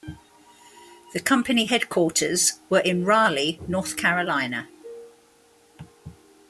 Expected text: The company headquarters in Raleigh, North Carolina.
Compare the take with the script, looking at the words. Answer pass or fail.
fail